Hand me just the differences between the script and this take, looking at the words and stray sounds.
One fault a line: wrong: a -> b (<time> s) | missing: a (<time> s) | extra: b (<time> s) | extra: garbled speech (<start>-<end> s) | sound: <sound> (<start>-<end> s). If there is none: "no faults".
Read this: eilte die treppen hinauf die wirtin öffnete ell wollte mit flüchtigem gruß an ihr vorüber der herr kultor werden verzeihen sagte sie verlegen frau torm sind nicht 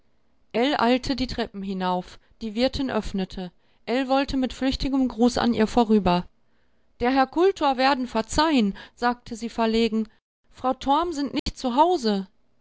sound: dropout (11.4-11.5 s)